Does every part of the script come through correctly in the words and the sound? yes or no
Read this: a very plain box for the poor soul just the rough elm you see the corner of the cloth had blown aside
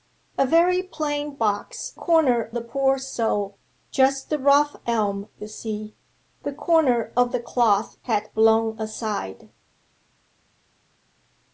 no